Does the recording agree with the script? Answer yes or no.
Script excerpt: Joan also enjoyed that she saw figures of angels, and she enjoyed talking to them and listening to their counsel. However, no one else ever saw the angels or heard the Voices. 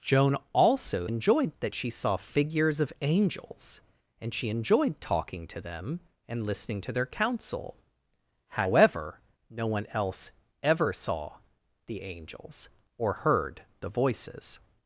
yes